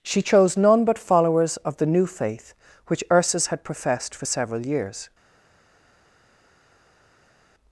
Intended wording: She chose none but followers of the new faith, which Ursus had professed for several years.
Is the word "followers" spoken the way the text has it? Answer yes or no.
yes